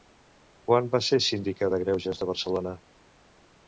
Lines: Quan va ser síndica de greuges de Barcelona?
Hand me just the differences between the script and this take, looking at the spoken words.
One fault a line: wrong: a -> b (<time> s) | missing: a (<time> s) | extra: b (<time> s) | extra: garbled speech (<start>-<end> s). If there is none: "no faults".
no faults